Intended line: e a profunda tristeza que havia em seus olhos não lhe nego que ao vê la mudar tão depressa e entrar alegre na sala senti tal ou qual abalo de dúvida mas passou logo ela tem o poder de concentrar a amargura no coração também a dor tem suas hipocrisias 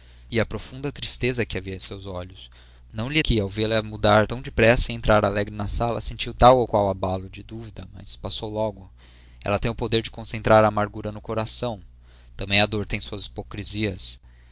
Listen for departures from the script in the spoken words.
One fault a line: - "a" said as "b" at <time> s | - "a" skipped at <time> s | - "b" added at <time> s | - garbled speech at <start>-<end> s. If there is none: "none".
- "nego" skipped at 3.2 s